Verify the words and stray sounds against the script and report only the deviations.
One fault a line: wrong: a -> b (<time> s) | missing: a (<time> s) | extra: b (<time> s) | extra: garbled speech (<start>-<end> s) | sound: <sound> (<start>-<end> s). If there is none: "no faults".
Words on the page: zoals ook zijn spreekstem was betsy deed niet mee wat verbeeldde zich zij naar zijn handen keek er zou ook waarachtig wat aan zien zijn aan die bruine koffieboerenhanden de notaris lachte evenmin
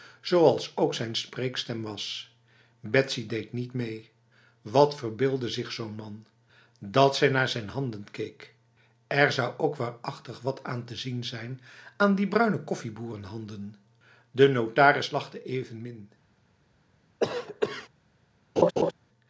extra: zo'n man dat (5.7 s)
extra: te (10.9 s)
sound: cough (17.2-17.9 s)
sound: laugh (18.6-18.9 s)